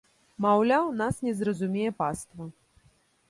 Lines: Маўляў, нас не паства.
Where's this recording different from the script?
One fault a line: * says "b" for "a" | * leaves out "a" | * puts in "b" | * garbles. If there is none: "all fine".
* puts in "зразумее"